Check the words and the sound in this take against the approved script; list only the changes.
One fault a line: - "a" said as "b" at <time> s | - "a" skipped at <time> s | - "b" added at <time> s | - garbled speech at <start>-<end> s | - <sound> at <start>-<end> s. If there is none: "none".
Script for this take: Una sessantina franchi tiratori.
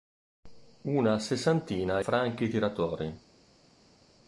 none